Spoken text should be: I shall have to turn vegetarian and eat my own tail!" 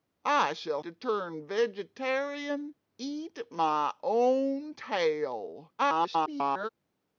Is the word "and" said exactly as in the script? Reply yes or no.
no